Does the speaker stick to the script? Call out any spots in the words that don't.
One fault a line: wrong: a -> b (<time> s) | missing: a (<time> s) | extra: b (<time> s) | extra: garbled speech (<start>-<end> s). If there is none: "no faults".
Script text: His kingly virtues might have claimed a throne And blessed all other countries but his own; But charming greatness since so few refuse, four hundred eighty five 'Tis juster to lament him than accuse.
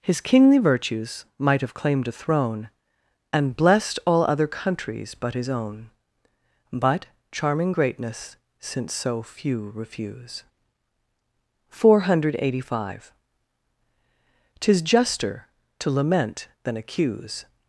missing: him (16.5 s)